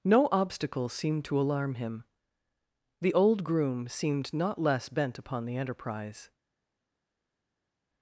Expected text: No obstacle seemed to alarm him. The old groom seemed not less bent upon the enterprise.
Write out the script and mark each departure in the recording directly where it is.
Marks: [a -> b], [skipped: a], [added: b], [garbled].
No obstacle seemed to alarm him. The old groom seemed not less bent upon the enterprise.